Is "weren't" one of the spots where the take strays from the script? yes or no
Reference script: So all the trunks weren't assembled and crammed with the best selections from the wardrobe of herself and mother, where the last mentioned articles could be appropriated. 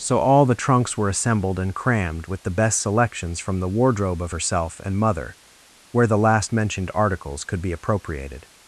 yes